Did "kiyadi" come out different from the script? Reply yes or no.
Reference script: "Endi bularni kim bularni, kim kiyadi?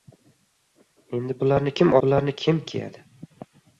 no